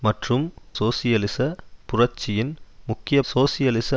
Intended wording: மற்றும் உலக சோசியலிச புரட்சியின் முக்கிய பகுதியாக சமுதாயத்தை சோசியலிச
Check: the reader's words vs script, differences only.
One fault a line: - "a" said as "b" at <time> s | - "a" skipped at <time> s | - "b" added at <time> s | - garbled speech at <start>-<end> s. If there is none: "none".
- "உலக" skipped at 0.5 s
- "பகுதியாக சமுதாயத்தை" skipped at 3.2 s